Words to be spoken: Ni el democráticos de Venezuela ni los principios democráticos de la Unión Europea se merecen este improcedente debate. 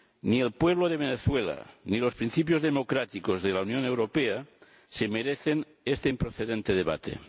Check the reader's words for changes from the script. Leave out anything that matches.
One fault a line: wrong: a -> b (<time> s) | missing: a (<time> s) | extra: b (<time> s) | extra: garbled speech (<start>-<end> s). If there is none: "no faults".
wrong: democráticos -> pueblo (0.5 s)